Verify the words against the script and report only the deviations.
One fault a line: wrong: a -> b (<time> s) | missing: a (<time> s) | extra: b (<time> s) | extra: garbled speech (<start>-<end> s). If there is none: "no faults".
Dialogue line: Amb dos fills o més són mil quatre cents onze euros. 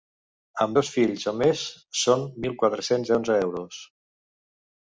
no faults